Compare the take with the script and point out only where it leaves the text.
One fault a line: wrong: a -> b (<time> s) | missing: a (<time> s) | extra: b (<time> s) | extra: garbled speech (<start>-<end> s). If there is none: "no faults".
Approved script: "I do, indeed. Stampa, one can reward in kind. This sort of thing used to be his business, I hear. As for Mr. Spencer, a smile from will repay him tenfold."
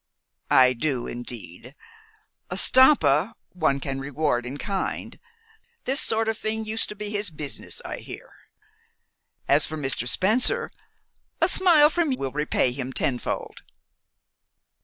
no faults